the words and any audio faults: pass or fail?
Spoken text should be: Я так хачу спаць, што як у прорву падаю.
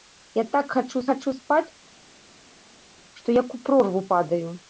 fail